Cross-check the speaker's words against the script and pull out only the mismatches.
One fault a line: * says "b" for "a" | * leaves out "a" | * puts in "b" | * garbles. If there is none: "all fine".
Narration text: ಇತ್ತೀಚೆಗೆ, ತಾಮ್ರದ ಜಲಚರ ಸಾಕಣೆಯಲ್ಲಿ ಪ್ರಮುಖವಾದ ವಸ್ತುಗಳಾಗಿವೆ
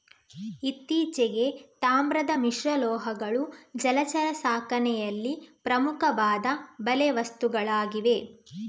* puts in "ಮಿಶ್ರಲೋಹಗಳು"
* puts in "ಬಲೆ"